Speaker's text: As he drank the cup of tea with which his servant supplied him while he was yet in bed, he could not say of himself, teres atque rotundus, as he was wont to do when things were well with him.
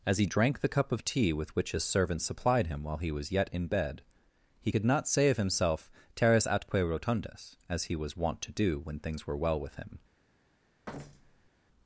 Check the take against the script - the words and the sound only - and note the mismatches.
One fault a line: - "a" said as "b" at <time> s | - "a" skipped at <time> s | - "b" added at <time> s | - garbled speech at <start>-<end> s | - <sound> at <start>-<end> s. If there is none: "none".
- thud at 10.9-11.5 s